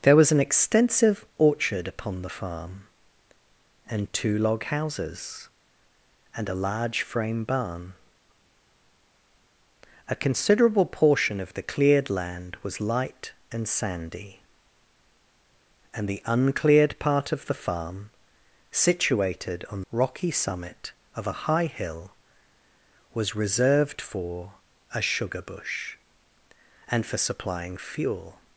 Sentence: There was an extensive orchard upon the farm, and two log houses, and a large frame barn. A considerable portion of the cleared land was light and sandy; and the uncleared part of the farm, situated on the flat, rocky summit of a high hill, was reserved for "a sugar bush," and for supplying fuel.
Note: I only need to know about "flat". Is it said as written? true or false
false